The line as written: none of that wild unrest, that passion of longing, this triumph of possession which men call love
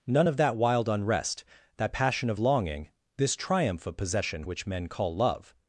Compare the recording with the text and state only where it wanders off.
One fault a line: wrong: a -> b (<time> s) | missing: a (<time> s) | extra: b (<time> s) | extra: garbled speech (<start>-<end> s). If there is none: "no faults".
no faults